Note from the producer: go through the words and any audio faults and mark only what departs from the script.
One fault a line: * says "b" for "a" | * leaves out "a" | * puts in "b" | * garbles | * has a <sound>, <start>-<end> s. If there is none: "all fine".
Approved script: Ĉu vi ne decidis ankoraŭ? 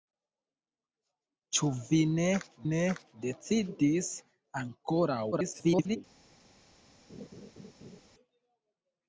* puts in "ne"
* garbles
* has a laugh, 7.1-8.0 s